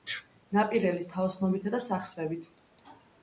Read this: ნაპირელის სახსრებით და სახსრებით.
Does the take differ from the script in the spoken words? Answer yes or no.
yes